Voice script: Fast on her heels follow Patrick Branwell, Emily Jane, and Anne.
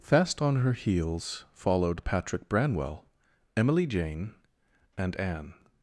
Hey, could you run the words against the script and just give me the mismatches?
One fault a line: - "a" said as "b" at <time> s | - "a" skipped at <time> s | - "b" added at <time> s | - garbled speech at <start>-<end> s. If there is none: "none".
- "follow" said as "followed" at 1.5 s